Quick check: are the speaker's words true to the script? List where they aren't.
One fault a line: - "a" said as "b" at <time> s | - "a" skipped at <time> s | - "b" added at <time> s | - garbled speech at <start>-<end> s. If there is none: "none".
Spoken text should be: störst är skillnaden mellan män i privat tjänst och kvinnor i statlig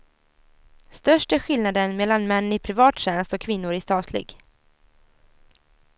none